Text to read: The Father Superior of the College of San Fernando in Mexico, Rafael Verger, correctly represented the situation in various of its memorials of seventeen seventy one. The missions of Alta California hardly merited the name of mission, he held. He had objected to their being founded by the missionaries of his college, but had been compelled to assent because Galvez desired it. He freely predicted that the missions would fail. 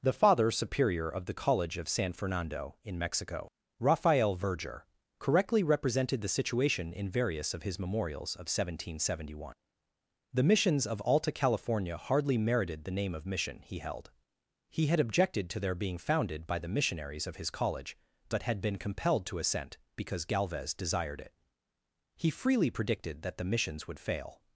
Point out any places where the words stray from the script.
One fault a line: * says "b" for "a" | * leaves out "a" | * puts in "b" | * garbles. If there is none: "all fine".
* says "his" for "its"